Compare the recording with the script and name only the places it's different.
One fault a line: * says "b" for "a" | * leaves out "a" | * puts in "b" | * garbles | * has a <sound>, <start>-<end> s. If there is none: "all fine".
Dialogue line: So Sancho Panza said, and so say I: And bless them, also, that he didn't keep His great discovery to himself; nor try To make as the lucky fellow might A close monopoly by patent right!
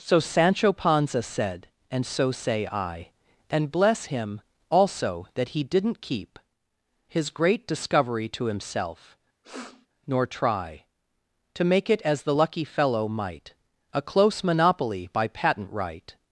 * says "him" for "them"
* has a sniff, 9.4-9.9 s
* puts in "it"